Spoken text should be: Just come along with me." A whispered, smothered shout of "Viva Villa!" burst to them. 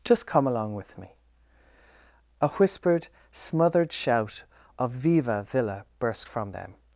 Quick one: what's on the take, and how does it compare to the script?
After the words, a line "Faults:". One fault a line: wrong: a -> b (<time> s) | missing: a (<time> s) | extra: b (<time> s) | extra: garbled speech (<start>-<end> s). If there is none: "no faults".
Just come along with me." A whispered, smothered shout of "Viva Villa!" burst from them.
Faults:
wrong: to -> from (6.2 s)